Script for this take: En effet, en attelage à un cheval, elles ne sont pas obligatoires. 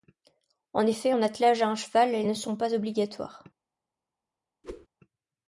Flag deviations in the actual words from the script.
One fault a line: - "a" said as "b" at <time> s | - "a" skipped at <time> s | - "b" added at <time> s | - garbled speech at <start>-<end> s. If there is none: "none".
none